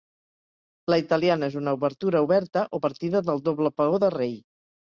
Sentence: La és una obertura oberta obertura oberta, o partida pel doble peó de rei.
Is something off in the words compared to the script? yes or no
yes